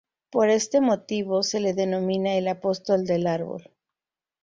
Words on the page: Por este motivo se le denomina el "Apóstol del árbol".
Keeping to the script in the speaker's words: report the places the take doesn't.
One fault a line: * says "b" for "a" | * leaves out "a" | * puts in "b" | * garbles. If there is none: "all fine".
all fine